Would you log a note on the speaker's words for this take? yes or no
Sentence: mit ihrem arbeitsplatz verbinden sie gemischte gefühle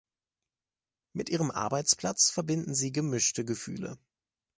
no